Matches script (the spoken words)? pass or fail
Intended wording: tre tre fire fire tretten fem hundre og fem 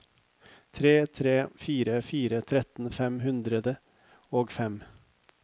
pass